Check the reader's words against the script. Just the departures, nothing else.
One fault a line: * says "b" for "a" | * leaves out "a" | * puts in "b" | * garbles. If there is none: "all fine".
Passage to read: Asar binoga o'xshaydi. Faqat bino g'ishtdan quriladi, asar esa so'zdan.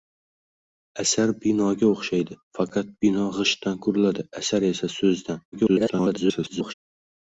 * garbles